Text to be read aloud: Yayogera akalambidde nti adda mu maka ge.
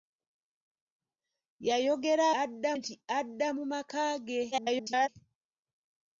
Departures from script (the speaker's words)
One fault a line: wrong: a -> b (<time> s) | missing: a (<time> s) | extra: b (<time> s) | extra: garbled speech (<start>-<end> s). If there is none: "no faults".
wrong: akalambidde -> adda (2.4 s)
extra: garbled speech (4.5-5.1 s)